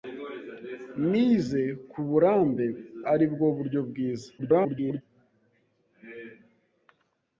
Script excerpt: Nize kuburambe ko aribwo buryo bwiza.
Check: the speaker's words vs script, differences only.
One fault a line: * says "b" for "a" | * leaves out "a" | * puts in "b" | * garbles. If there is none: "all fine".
* leaves out "ko"
* garbles